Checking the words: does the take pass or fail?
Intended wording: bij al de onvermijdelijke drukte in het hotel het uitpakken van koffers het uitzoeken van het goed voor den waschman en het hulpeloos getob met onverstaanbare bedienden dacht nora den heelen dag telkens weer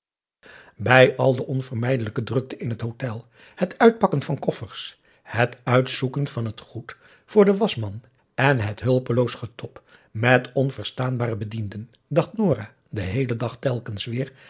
pass